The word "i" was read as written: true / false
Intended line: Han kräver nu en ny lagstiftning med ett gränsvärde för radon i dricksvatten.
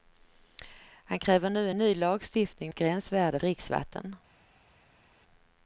false